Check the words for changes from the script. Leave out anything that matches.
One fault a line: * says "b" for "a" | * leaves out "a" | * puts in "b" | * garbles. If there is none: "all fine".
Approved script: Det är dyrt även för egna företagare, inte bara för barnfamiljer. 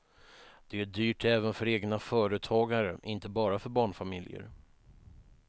all fine